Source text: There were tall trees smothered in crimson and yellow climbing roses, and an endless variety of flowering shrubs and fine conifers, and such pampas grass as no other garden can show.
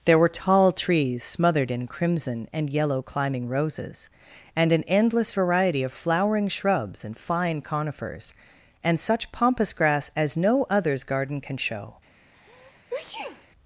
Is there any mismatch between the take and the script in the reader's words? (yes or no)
yes